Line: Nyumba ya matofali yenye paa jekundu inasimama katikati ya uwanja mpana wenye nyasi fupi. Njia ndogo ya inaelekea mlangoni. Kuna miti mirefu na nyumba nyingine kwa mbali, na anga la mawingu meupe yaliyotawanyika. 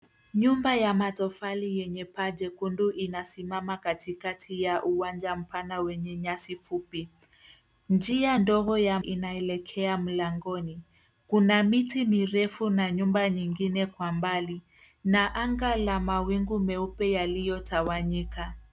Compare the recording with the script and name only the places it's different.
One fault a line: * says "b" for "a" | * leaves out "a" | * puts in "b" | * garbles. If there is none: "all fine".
all fine